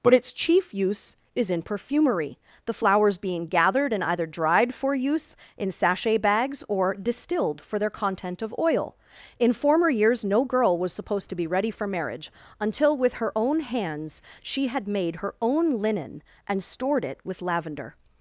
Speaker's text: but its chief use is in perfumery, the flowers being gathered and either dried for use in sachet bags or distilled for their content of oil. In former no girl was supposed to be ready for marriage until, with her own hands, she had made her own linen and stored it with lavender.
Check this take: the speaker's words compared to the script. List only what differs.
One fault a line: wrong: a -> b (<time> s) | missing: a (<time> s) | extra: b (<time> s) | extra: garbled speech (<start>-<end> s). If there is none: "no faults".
extra: years (9.9 s)